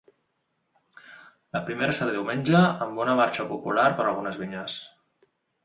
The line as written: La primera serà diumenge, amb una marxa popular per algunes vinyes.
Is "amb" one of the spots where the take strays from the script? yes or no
no